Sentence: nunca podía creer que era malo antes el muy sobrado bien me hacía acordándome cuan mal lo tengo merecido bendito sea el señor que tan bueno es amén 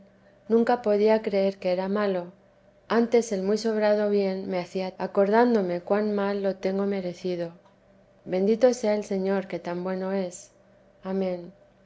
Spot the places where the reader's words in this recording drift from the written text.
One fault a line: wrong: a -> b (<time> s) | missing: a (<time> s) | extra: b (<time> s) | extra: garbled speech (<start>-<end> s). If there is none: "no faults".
no faults